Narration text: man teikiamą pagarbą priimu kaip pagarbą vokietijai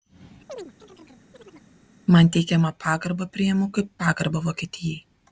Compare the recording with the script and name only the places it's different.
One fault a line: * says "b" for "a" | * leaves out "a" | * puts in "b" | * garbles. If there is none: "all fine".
all fine